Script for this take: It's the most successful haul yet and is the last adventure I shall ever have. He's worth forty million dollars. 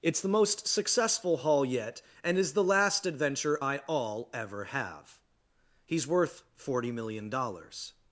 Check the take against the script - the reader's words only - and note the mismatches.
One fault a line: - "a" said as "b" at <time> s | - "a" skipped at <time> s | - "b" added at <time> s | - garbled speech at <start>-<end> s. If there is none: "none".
- "shall" said as "all" at 3.9 s